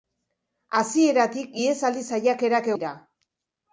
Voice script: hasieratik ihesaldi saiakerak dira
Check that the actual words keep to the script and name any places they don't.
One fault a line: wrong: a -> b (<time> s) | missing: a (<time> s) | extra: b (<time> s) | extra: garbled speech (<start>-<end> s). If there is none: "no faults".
no faults